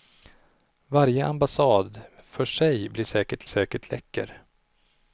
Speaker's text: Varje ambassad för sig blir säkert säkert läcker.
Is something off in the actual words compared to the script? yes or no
no